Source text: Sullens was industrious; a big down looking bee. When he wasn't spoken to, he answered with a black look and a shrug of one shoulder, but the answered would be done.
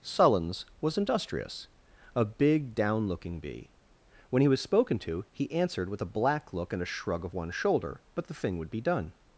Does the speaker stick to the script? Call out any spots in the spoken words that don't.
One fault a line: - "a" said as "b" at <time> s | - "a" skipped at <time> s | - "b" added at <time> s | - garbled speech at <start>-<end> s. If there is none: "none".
- "wasn't" said as "was" at 4.5 s
- "answered" said as "thing" at 8.3 s